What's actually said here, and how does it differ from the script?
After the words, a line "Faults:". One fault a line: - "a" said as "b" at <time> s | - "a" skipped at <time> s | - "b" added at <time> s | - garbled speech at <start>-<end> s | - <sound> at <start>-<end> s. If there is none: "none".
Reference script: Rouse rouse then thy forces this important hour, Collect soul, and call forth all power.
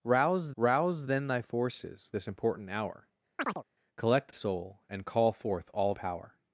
Rouse rouse then thy forces this important hour, Collect soul, and call forth all power.
Faults:
- chirp at 3.4-3.6 s